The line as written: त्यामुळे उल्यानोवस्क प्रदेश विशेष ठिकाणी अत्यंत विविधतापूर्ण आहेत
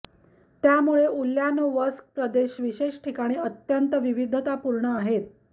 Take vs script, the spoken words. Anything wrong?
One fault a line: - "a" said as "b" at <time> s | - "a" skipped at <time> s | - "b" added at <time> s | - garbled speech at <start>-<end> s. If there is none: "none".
none